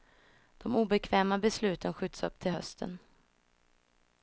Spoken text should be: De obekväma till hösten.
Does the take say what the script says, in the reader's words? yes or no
no